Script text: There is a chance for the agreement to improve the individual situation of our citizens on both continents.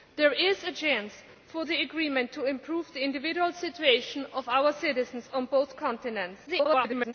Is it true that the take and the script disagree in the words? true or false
true